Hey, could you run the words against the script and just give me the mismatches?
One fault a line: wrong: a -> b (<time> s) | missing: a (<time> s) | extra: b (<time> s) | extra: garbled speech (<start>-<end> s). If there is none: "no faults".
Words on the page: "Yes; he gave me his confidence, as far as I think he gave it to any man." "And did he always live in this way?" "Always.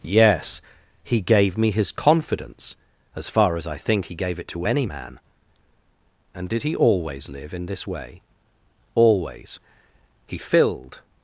extra: He filled (10.3 s)